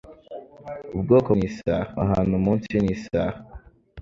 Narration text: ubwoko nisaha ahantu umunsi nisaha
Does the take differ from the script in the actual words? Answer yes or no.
no